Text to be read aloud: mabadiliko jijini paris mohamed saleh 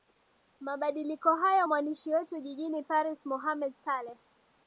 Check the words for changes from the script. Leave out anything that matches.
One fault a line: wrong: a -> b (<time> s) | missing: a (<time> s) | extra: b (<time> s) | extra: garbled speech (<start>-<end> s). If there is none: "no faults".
extra: hayo mwandishi wetu (1.4 s)